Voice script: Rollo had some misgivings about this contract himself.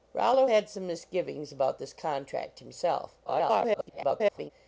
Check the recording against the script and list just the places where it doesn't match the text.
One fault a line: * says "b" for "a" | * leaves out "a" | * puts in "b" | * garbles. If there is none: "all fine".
* garbles